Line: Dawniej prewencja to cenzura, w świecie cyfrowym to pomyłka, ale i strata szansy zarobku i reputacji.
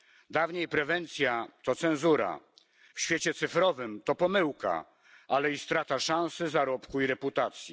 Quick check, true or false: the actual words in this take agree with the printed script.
true